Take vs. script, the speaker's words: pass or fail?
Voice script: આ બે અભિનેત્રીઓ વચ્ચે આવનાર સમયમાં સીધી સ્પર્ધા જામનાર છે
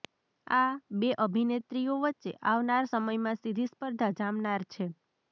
pass